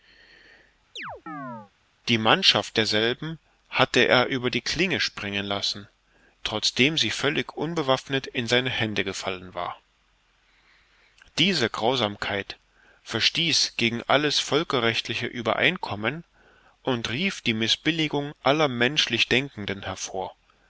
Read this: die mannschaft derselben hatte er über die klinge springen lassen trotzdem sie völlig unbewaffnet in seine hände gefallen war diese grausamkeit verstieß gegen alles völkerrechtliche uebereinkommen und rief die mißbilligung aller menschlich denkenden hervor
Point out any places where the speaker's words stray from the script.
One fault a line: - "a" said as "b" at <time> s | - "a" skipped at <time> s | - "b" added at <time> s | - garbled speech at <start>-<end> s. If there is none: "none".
none